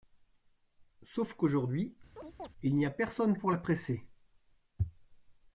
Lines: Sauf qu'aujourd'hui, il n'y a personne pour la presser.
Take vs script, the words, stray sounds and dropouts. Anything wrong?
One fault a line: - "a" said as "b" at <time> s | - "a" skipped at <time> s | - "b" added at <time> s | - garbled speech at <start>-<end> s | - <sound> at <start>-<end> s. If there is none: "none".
- chirp at 2.2-2.5 s